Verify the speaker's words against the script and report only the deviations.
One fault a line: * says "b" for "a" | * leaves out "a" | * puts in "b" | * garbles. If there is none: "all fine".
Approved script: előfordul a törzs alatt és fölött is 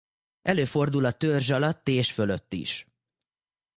all fine